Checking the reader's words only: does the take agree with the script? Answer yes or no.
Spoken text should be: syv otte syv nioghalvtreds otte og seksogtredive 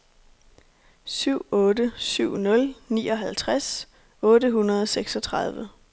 no